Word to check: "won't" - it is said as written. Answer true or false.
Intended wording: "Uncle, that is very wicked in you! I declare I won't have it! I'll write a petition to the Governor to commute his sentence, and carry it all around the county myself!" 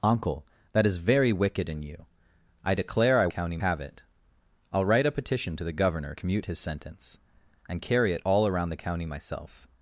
false